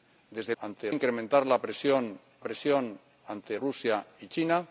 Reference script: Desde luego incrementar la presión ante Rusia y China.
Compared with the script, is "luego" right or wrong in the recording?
wrong